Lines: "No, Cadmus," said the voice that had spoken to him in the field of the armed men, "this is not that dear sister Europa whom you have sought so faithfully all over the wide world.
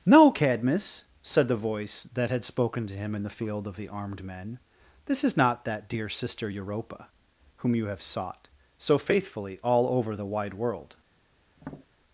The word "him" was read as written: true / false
true